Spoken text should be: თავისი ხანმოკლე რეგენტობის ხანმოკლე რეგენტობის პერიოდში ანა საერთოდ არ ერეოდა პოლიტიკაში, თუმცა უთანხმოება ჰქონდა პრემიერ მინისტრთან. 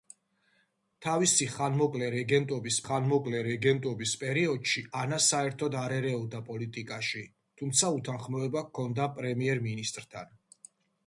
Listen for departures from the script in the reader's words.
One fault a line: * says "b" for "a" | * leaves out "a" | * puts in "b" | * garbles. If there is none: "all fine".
all fine